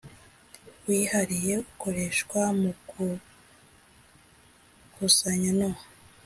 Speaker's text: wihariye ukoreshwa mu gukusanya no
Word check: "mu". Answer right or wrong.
right